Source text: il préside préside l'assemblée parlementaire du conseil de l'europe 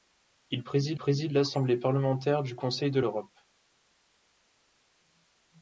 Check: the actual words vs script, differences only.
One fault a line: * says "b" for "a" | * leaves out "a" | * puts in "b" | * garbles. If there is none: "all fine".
all fine